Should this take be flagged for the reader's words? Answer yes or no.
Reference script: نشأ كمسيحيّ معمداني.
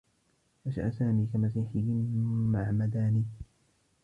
yes